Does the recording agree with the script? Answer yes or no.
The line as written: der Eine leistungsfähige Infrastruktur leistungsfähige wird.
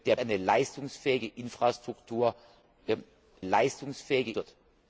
yes